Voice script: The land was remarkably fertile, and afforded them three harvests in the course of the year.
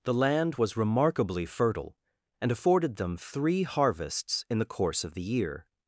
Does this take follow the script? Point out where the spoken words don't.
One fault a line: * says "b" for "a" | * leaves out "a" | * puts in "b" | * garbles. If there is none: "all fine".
all fine